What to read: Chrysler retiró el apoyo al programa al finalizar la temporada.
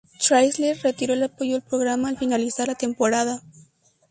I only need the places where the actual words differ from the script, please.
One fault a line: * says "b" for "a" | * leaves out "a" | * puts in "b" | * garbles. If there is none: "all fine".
all fine